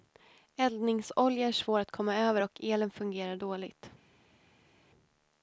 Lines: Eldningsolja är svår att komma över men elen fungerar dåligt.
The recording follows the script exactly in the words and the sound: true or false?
false